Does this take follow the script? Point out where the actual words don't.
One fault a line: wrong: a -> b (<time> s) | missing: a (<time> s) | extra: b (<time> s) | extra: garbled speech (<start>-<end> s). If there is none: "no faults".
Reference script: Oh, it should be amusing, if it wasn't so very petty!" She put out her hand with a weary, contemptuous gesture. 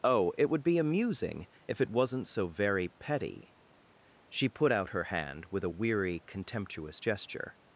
wrong: should -> would (0.5 s)